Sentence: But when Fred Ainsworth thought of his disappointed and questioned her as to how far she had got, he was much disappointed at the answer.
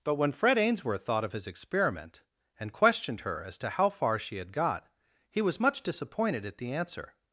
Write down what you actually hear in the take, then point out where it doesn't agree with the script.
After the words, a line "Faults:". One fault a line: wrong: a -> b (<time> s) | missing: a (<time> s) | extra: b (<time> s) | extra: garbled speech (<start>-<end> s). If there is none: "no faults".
But when Fred Ainsworth thought of his experiment and questioned her as to how far she had got, he was much disappointed at the answer.
Faults:
wrong: disappointed -> experiment (1.5 s)